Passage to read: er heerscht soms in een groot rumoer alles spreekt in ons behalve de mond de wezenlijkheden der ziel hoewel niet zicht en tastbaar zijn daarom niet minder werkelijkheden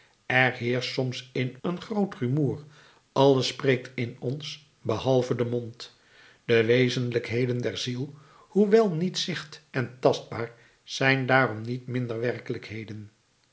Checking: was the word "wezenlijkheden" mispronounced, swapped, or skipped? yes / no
no